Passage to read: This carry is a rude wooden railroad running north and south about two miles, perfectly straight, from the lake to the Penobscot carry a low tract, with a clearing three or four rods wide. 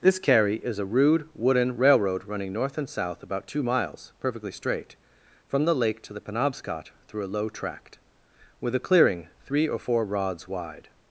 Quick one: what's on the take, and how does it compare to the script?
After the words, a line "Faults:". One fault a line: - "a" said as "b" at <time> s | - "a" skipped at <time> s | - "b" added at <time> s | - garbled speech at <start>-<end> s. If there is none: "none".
This carry is a rude wooden railroad running north and south about two miles, perfectly straight, from the lake to the Penobscot through a low tract, with a clearing three or four rods wide.
Faults:
- "carry" said as "through" at 7.1 s